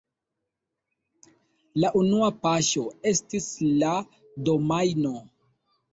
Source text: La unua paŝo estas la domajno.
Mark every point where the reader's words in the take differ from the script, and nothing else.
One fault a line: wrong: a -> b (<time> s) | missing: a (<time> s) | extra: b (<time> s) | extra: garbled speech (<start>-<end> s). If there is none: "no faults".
wrong: estas -> estis (3.1 s)